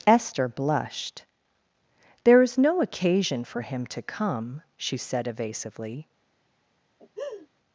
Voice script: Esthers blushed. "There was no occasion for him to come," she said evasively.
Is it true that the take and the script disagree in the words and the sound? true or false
true